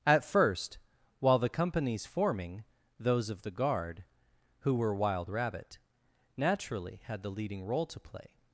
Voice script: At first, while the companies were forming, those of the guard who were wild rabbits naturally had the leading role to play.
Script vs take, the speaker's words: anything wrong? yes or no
yes